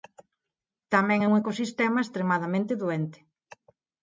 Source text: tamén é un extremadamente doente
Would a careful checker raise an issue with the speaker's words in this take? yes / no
yes